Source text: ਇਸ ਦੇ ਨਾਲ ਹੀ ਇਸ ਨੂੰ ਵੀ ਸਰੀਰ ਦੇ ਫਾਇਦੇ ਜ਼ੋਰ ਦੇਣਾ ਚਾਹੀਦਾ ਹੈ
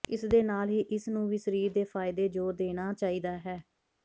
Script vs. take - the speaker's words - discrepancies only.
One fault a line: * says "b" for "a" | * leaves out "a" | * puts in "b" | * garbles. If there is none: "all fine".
all fine